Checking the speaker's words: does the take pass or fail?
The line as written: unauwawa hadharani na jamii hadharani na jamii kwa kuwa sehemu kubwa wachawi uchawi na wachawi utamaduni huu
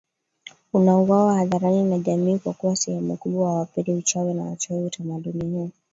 fail